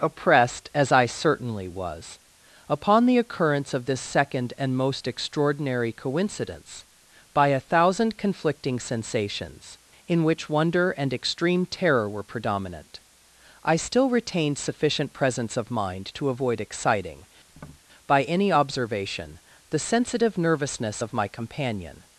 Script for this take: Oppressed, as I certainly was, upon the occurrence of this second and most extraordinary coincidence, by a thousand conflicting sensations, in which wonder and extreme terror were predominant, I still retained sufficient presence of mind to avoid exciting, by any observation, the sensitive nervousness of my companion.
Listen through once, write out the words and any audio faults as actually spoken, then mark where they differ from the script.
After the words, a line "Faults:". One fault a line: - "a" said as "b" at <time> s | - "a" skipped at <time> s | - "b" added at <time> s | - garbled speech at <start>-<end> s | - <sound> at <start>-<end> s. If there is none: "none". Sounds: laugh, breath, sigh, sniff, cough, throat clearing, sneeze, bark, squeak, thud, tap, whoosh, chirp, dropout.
Oppressed, as I certainly was, upon the occurrence of this second and most extraordinary coincidence, by a thousand conflicting sensations, in which wonder and extreme terror were predominant, I still retained sufficient presence of mind to avoid exciting, by any observation, the sensitive nervousness of my companion.
Faults:
- tap at 17.5-17.8 s